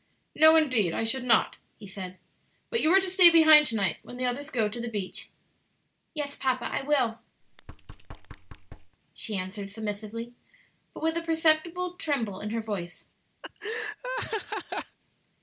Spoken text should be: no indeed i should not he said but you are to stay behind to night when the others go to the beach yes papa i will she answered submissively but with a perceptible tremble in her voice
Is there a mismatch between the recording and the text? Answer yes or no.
no